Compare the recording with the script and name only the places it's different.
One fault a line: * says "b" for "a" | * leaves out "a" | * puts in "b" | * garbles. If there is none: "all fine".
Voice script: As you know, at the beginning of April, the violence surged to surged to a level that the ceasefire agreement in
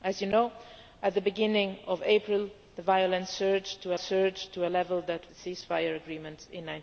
all fine